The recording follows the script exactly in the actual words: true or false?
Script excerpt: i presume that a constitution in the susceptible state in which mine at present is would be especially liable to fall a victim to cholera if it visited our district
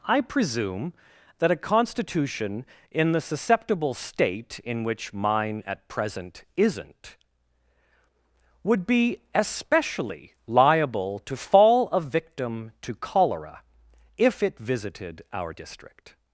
false